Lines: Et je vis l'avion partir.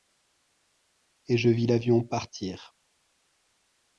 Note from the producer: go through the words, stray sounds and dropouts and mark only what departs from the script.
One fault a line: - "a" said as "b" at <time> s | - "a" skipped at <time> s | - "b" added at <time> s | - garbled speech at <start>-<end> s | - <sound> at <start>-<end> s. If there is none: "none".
none